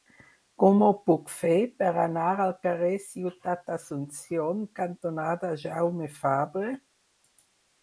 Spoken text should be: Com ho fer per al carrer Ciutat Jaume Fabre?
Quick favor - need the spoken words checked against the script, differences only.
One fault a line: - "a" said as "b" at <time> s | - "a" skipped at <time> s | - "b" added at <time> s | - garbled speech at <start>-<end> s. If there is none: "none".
- "puc" added at 1.1 s
- "anar" added at 2.0 s
- "d'Asunción cantonada" added at 3.7 s